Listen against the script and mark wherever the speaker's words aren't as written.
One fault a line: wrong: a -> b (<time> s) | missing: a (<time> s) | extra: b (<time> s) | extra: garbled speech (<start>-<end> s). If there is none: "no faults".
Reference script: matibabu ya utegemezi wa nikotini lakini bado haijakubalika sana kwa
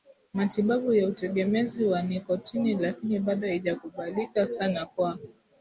no faults